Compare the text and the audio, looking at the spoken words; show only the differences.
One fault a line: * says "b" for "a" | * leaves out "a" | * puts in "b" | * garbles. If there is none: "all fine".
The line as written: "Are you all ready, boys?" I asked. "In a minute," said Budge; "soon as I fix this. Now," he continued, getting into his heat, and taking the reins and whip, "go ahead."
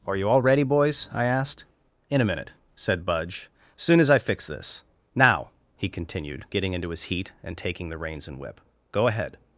all fine